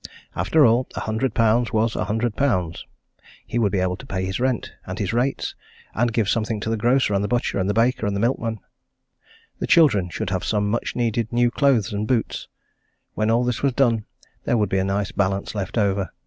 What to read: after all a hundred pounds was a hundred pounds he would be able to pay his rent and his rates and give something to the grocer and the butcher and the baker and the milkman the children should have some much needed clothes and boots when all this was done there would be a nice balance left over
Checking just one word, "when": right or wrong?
right